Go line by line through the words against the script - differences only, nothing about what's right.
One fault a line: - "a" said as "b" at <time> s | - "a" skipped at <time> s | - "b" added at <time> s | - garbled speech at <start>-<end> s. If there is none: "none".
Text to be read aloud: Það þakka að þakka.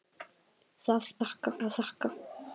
none